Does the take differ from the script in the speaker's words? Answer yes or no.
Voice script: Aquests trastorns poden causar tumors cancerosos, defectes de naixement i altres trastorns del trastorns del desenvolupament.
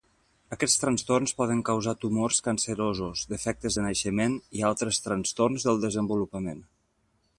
yes